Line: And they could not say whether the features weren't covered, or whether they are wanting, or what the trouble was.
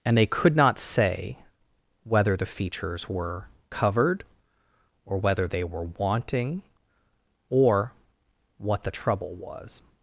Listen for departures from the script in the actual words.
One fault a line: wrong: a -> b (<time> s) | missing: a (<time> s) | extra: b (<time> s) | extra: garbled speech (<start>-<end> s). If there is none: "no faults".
wrong: weren't -> were (3.1 s)
wrong: are -> were (5.6 s)